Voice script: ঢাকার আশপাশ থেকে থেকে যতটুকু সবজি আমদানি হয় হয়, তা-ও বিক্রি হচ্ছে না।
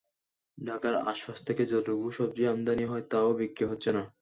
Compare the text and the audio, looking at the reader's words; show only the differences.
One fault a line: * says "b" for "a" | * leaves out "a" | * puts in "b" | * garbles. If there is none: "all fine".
* leaves out "থেকে"
* leaves out "হয়"